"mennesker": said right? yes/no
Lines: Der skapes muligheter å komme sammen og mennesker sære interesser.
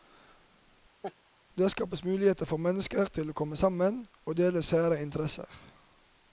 no